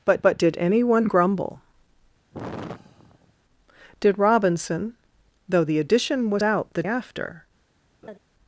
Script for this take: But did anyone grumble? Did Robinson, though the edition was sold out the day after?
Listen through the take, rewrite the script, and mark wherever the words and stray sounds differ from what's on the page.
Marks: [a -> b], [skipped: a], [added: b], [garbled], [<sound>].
But [added: but] did anyone grumble? [sigh] Did Robinson, though the edition was [skipped: sold] out the [skipped: day] after? [laugh]